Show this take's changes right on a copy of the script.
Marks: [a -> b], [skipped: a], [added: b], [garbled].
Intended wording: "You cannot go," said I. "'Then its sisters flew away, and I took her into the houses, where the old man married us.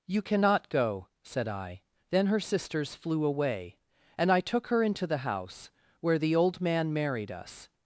"You cannot go," said I. "'Then [its -> her] sisters flew away, and I took her into the [houses, -> house] where the old man married us.